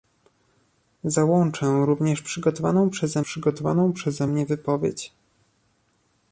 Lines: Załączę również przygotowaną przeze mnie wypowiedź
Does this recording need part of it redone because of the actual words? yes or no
yes